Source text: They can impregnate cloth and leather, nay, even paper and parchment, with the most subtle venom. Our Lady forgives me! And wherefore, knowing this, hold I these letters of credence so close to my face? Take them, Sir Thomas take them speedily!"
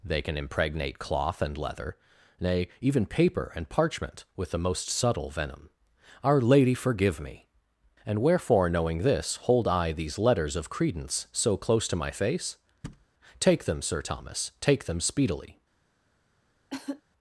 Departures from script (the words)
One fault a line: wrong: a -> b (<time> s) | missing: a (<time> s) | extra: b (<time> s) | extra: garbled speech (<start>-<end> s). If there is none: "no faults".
wrong: forgives -> forgive (6.7 s)